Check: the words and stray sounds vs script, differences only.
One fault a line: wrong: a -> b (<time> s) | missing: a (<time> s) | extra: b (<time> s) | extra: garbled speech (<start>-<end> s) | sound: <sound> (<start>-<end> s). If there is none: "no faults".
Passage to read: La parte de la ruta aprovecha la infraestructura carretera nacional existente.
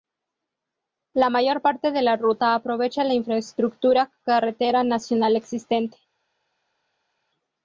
extra: mayor (1.3 s)